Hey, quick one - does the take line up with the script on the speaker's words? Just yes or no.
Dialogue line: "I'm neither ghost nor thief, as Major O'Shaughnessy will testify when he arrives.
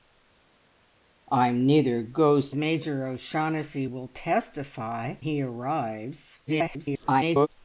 no